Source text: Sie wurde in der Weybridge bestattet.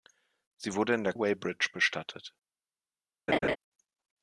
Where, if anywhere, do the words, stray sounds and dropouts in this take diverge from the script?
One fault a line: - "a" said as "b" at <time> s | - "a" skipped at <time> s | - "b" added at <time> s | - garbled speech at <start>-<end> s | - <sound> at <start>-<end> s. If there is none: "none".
- laugh at 3.3-3.6 s